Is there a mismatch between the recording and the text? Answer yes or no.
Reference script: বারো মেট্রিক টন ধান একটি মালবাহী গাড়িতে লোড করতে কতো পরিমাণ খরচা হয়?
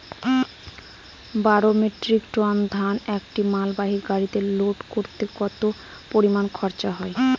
no